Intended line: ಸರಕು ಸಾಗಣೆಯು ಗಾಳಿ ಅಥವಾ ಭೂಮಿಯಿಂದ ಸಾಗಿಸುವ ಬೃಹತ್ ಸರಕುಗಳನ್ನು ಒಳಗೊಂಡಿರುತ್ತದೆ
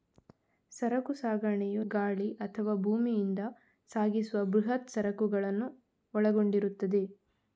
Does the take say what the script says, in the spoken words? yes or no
yes